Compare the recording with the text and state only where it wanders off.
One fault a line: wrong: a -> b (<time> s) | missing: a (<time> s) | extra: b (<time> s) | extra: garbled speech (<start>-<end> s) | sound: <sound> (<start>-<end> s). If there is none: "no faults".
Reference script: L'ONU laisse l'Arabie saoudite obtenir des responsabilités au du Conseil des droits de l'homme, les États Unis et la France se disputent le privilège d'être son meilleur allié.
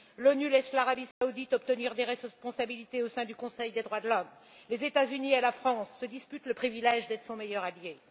sound: dropout (1.1-1.2 s)
extra: sein (3.1 s)